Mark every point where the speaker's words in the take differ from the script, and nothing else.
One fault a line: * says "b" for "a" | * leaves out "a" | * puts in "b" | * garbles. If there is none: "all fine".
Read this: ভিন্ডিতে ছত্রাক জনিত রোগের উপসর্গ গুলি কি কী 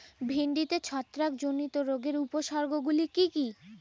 all fine